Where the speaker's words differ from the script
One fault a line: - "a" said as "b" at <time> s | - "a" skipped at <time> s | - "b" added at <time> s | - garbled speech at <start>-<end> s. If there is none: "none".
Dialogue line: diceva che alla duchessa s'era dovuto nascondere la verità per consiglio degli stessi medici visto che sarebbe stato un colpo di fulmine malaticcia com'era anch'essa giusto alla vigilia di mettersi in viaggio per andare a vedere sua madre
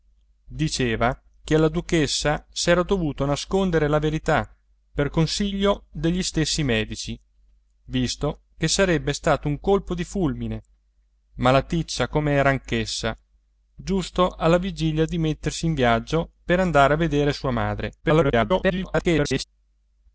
- garbled speech at 18.0-19.4 s